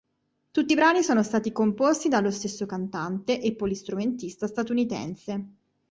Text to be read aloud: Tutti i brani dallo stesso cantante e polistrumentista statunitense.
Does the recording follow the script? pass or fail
fail